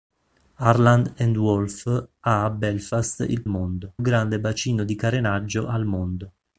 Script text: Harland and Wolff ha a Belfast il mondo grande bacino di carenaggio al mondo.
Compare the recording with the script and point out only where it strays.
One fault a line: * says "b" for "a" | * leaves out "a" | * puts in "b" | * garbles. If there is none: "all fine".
all fine